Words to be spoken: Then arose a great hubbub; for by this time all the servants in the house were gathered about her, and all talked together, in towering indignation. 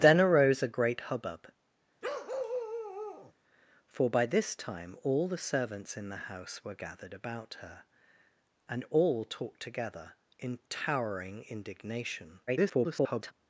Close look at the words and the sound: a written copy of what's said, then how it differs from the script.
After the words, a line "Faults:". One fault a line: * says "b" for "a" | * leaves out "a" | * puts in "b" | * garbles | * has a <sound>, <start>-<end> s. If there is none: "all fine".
Then arose a great hubbub; for by this time all the servants in the house were gathered about her, and all talked together, in towering indignation. [garbled]
Faults:
* has a bark, 2.0-3.3 s
* garbles